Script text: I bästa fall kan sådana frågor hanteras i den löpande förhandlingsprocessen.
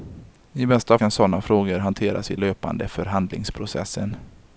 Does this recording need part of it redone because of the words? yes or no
yes